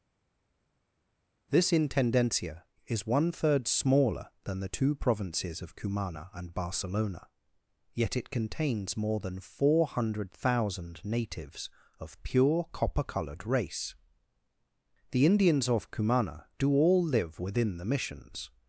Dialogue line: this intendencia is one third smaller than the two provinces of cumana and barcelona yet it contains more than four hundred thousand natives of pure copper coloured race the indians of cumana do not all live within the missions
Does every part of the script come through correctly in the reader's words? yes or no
no